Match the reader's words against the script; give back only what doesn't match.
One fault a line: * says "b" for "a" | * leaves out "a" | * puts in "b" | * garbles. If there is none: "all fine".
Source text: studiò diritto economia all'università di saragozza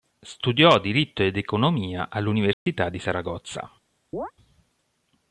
* puts in "ed"